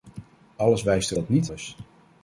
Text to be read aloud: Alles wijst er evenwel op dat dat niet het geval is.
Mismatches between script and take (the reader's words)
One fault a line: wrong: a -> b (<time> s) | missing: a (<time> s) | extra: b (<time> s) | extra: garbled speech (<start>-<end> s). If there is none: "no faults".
missing: evenwel op (1.2 s)
missing: dat (1.3 s)
missing: het geval (1.5 s)